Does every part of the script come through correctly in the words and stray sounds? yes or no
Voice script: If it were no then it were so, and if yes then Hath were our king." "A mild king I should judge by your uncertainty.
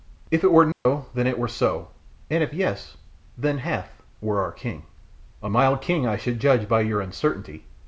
no